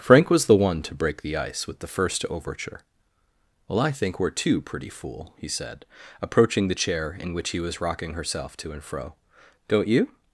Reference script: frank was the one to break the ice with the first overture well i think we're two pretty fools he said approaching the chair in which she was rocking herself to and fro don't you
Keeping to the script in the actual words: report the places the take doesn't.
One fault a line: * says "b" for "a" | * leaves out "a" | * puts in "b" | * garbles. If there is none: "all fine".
* says "fool" for "fools"
* says "he" for "she"